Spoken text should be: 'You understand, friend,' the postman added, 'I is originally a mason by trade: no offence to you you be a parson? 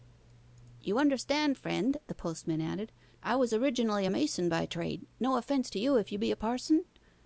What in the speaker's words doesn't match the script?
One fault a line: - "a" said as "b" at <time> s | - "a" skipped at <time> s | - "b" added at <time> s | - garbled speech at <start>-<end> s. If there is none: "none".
- "is" said as "was" at 3.4 s
- "if" added at 6.0 s